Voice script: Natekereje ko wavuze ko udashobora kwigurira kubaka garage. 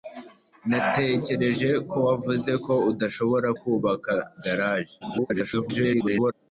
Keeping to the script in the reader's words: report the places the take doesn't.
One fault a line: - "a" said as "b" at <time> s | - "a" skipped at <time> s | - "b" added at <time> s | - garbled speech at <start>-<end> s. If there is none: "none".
- "kwigurira" skipped at 3.5 s
- garbled speech at 5.0-6.3 s